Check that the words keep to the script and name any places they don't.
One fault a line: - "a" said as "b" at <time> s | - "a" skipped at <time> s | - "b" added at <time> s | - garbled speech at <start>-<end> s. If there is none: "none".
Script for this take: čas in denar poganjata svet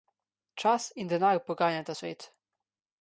none